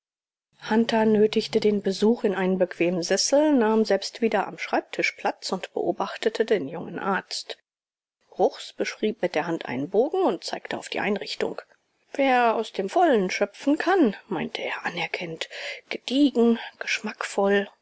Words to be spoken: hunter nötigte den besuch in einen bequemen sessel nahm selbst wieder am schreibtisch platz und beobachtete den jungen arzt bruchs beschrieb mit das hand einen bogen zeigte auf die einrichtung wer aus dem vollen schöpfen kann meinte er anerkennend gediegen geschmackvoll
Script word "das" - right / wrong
wrong